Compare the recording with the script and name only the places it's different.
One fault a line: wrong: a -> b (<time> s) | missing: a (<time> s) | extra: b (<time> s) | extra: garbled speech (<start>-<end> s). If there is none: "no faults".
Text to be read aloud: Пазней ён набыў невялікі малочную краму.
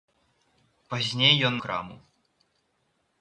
missing: набыў невялікі малочную (1.6 s)